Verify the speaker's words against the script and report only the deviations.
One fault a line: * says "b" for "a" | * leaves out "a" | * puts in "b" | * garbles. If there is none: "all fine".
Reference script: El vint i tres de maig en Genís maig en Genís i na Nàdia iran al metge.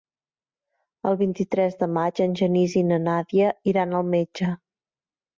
* leaves out "maig en Genís"